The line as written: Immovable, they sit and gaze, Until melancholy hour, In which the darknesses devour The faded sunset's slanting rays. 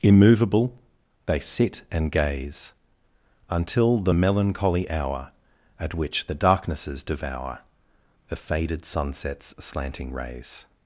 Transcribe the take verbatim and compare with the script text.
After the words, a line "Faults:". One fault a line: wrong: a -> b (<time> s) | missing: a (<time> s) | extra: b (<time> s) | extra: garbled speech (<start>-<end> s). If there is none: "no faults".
Immovable, they sit and gaze, Until the melancholy hour, At which the darknesses devour The faded sunset's slanting rays.
Faults:
extra: the (4.0 s)
wrong: In -> At (5.8 s)